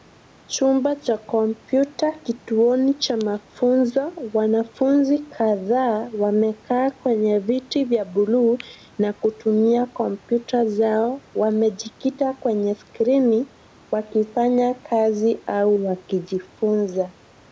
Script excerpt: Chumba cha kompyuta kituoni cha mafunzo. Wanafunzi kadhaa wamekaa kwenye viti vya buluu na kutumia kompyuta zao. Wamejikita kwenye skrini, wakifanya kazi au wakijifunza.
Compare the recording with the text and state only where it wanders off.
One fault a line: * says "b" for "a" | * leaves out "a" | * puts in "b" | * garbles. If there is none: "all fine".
all fine